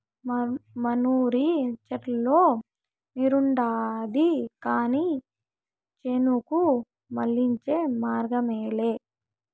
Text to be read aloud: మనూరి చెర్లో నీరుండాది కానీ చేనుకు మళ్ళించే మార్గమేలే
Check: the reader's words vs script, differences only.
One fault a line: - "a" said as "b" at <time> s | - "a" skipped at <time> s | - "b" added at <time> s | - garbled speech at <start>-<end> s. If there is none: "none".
none